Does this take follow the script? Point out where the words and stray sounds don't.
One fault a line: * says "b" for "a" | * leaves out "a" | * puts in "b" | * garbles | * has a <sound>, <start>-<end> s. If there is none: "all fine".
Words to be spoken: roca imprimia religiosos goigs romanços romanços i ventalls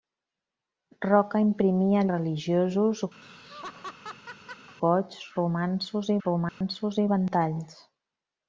* has a laugh, 3.2-4.8 s
* has a dropout, 6.5-6.6 s